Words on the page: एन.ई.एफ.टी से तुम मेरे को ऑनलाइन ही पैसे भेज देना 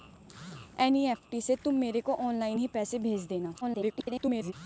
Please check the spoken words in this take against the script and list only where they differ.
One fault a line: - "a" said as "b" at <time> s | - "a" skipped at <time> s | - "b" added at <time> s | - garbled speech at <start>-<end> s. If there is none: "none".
- garbled speech at 3.6-4.5 s